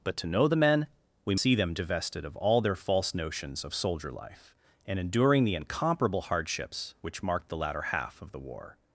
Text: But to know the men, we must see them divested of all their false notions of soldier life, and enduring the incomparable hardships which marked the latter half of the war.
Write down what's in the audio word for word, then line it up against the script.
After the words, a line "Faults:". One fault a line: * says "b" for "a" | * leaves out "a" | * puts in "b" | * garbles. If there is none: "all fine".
But to know the men, we see them divested of all their false notions of soldier life, and enduring the incomparable hardships which marked the latter half of the war.
Faults:
* leaves out "must"